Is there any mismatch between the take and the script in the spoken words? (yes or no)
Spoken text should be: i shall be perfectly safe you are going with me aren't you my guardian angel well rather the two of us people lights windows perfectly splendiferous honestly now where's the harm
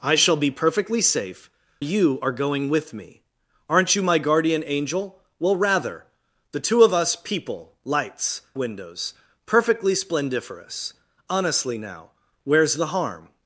no